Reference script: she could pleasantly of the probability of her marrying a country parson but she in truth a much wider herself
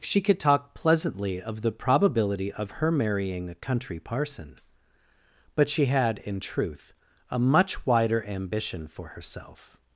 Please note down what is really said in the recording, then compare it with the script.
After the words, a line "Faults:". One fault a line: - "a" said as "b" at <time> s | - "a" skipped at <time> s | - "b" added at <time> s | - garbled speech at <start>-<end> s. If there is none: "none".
she could talk pleasantly of the probability of her marrying a country parson but she had in truth a much wider ambition for herself
Faults:
- "talk" added at 0.4 s
- "had" added at 5.8 s
- "ambition for" added at 8.2 s